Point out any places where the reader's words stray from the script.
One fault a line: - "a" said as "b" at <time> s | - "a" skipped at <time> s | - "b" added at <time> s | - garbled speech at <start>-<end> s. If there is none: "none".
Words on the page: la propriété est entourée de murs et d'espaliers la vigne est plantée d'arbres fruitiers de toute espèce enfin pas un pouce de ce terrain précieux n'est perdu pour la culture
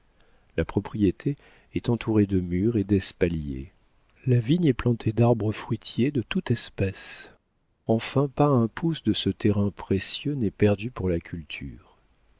none